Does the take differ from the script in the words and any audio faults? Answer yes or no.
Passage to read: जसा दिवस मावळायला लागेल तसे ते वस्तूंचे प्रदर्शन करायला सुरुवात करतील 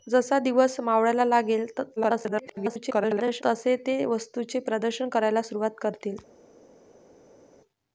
yes